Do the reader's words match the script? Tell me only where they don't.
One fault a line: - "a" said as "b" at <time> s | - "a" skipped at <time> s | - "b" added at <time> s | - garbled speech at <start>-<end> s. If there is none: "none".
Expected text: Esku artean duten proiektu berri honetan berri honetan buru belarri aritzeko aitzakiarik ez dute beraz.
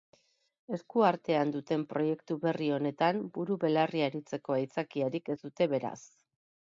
- "berri honetan" skipped at 3.2 s